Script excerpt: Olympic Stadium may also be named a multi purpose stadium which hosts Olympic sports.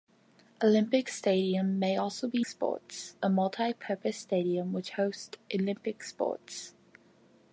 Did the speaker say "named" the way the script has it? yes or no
no